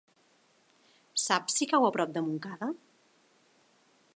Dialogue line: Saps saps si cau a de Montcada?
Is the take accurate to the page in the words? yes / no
no